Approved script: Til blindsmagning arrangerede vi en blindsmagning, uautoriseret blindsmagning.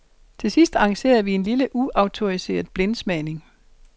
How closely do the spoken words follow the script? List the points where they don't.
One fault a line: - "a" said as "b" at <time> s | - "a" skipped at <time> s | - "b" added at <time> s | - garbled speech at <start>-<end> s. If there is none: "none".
- "blindsmagning" said as "sidst" at 0.5 s
- "blindsmagning" said as "lille" at 1.4 s